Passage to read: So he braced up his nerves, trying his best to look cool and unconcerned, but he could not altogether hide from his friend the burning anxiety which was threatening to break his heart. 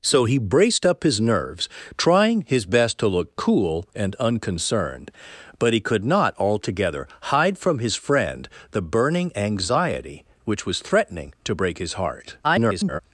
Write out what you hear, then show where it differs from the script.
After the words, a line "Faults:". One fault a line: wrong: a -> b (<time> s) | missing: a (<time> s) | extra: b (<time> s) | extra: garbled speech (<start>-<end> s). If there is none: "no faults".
So he braced up his nerves, trying his best to look cool and unconcerned, but he could not altogether hide from his friend the burning anxiety which was threatening to break his heart. [garbled]
Faults:
extra: garbled speech (12.4-13.0 s)